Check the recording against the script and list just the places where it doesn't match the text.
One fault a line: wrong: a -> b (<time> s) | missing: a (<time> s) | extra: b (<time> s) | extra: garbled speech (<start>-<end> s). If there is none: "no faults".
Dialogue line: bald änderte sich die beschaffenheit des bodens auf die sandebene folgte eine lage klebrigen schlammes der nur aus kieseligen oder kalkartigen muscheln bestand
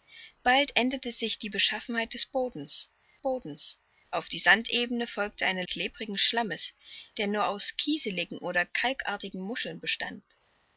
extra: bodens (3.2 s)
missing: lage (5.6 s)